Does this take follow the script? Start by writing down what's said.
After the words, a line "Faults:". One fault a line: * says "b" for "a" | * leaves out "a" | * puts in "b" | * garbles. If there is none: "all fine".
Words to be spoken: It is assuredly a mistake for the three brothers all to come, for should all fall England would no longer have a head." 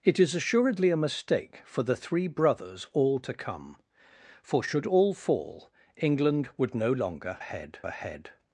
It is assuredly a mistake for the three brothers all to come, for should all fall England would no longer head a head."
Faults:
* says "head" for "have"